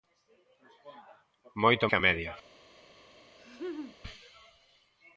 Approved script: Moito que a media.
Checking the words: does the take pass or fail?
pass